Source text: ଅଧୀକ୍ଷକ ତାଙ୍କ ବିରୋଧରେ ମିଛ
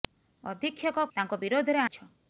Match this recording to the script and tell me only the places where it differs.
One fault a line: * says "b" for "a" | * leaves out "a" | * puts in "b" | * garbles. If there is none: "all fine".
all fine